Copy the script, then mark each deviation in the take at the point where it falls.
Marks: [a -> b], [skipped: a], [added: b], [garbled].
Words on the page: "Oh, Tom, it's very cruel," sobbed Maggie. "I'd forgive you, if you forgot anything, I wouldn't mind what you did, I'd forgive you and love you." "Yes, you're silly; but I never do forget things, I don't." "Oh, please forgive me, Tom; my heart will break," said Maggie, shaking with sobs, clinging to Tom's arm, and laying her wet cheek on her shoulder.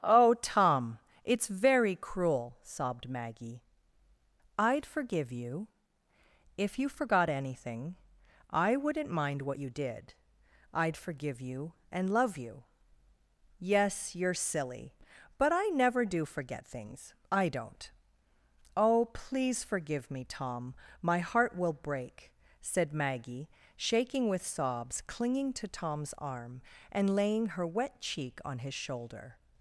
"Oh, Tom, it's very cruel," sobbed Maggie. "I'd forgive you, if you forgot anything, I wouldn't mind what you did, I'd forgive you and love you." "Yes, you're silly; but I never do forget things, I don't." "Oh, please forgive me, Tom; my heart will break," said Maggie, shaking with sobs, clinging to Tom's arm, and laying her wet cheek on [her -> his] shoulder.